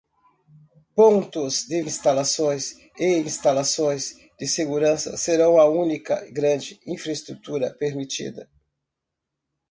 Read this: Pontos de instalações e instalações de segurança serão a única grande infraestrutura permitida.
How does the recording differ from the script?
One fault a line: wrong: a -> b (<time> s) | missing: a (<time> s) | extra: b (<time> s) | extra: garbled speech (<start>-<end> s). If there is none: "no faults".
no faults